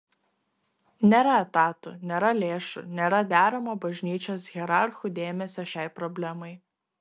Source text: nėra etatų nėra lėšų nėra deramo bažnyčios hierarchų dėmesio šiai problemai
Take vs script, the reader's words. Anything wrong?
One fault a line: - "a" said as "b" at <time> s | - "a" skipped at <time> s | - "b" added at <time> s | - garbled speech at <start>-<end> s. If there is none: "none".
none